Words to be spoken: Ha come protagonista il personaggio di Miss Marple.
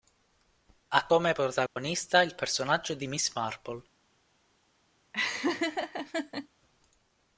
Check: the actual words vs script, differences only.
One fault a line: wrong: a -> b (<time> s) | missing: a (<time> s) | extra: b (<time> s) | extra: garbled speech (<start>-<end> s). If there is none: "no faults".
no faults